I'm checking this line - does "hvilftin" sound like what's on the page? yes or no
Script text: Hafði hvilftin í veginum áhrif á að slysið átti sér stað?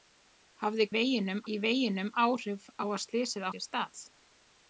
no